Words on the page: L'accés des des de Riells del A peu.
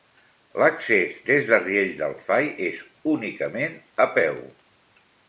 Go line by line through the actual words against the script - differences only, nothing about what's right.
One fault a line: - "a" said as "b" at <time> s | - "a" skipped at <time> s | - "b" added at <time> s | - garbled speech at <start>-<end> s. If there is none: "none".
- "des" skipped at 1.4 s
- "Fai és únicament" added at 2.3 s